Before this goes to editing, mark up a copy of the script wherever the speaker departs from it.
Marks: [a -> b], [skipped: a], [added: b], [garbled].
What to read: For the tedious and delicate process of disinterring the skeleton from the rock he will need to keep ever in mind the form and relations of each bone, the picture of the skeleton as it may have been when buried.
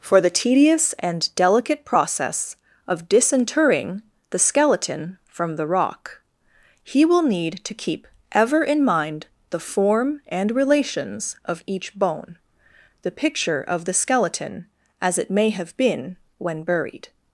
For the tedious and delicate process of disinterring the skeleton from the rock he will need to keep ever in mind the form and relations of each bone, the picture of the skeleton as it may have been when buried.